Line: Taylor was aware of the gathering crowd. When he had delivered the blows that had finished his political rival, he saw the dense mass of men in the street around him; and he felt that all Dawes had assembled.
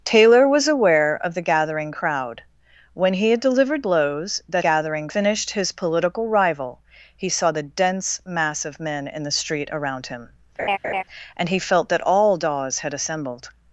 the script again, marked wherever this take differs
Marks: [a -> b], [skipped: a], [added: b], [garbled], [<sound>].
Taylor was aware of the gathering crowd. When he had delivered [skipped: the] blows that [had -> gathering] finished his political rival, he saw the dense mass of men in the street around him; [laugh] and he felt that all Dawes had assembled.